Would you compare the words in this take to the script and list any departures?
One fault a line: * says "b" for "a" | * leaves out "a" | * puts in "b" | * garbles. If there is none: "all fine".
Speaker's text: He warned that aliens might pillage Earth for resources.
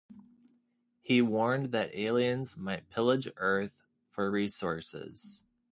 all fine